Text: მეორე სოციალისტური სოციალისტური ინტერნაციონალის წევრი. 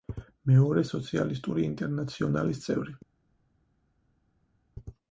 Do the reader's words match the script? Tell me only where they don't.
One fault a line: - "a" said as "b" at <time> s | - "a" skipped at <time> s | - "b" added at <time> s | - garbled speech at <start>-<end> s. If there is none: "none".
- "სოციალისტური" skipped at 1.6 s